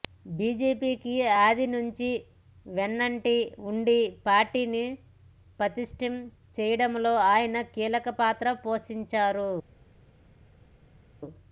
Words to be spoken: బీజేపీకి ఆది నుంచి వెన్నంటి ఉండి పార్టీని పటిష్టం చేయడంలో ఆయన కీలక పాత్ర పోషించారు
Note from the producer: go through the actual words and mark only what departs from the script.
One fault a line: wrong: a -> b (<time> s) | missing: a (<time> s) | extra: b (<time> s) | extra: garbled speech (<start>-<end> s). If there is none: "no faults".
no faults